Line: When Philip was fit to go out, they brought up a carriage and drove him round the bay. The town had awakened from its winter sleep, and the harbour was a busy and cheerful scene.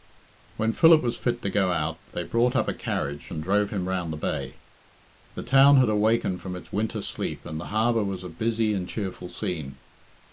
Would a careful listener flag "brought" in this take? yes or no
no